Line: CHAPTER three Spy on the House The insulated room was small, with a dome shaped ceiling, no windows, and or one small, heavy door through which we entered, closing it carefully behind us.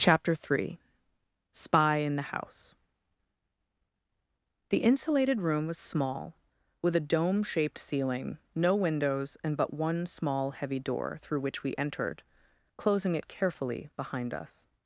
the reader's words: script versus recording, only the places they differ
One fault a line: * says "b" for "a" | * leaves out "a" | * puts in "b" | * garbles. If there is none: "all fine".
* says "in" for "on"
* says "but" for "or"